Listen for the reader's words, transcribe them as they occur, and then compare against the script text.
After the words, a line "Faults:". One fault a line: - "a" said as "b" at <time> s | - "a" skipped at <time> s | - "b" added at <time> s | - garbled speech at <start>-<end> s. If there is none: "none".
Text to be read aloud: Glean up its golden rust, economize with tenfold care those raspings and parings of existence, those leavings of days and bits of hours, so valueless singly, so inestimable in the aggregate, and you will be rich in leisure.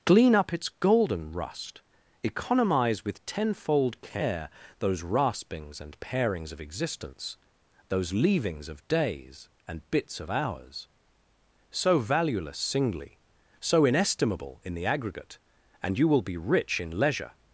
Glean up its golden rust, economize with tenfold care those raspings and parings of existence, those leavings of days and bits of hours, so valueless singly, so inestimable in the aggregate, and you will be rich in leisure.
Faults:
none